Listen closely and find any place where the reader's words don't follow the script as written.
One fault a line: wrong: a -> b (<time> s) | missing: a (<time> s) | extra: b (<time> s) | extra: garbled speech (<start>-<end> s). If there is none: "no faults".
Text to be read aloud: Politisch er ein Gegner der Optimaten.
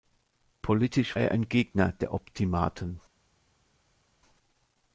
no faults